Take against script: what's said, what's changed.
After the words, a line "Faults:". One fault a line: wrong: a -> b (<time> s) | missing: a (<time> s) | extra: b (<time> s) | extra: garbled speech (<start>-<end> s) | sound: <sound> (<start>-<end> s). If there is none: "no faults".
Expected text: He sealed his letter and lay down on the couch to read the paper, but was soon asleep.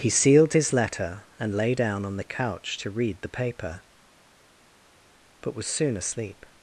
He sealed his letter and lay down on the couch to read the paper, but was soon asleep.
Faults:
no faults